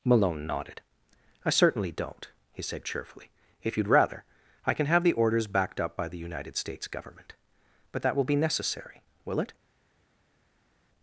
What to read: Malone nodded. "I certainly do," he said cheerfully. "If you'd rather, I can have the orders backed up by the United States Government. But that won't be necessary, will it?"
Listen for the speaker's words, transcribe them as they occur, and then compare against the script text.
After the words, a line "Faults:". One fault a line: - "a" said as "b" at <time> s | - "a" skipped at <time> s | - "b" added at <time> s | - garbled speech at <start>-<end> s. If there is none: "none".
Malone nodded. "I certainly don't," he said cheerfully. "If you'd rather, I can have the orders backed up by the United States Government. But that will be necessary, will it?"
Faults:
- "do" said as "don't" at 1.9 s
- "won't" said as "will" at 8.1 s